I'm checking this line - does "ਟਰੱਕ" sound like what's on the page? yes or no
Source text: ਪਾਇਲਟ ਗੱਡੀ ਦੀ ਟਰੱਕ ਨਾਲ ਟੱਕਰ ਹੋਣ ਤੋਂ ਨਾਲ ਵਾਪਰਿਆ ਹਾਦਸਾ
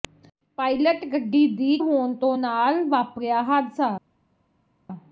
no